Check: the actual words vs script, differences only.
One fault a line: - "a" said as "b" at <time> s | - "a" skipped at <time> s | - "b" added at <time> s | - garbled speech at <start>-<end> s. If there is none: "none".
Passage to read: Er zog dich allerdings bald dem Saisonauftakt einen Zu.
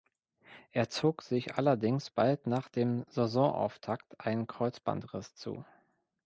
- "dich" said as "sich" at 1.2 s
- "nach" added at 2.5 s
- "Kreuzbandriss" added at 4.5 s